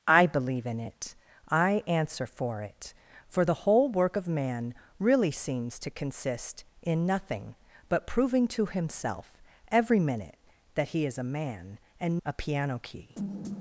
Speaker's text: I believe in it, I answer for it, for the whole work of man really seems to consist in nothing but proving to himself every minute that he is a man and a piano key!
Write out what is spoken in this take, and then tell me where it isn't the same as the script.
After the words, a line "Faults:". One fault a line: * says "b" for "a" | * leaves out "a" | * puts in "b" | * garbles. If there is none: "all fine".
I believe in it, I answer for it, for the whole work of man really seems to consist in nothing but proving to himself every minute that he is a man and a piano key!
Faults:
all fine